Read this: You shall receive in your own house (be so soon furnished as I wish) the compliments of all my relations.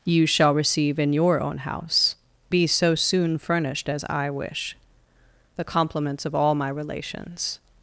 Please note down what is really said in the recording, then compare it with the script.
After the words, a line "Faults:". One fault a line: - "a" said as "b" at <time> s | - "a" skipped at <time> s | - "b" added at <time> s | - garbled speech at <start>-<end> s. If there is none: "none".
You shall receive in your own house (be so soon furnished as I wish) the compliments of all my relations.
Faults:
none